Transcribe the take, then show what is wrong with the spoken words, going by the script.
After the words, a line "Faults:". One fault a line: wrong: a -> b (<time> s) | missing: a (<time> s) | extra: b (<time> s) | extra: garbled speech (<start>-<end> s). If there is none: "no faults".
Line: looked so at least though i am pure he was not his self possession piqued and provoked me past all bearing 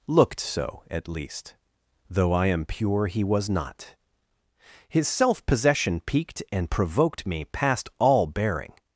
looked so at least though i am pure he was not his self possession piqued and provoked me past all bearing
Faults:
no faults